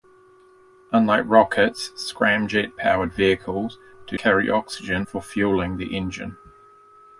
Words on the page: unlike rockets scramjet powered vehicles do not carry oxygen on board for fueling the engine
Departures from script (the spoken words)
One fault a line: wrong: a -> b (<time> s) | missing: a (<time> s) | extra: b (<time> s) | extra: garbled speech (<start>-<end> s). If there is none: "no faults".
missing: not (4.2 s)
missing: on board (5.0 s)